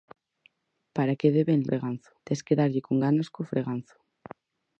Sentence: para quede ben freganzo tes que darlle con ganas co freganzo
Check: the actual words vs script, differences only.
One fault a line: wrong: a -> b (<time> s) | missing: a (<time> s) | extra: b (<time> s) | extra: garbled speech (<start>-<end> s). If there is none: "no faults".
no faults